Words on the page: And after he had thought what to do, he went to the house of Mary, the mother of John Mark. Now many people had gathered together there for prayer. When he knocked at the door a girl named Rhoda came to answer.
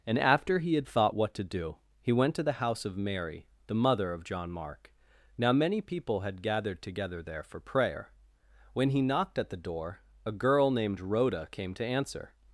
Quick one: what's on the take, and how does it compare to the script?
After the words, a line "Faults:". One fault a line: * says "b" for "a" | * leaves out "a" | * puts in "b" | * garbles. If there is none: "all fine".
And after he had thought what to do, he went to the house of Mary, the mother of John Mark. Now many people had gathered together there for prayer. When he knocked at the door a girl named Rhoda came to answer.
Faults:
all fine